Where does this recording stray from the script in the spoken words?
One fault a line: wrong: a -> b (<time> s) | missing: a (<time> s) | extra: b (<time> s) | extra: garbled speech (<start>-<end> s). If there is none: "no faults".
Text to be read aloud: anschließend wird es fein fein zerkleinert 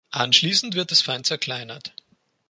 missing: fein (1.3 s)